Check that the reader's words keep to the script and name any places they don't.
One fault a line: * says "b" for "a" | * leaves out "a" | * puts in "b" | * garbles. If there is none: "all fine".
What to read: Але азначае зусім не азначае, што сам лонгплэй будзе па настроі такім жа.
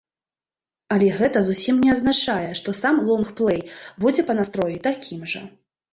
* says "гэта" for "азначае"